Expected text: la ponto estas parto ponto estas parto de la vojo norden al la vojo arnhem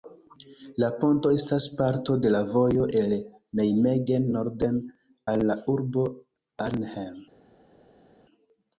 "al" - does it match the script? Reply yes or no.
yes